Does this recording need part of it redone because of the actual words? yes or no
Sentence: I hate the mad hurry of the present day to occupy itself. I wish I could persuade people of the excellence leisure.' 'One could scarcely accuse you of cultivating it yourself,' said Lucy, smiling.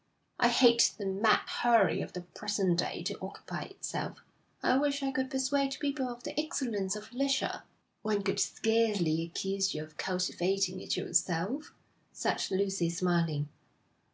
yes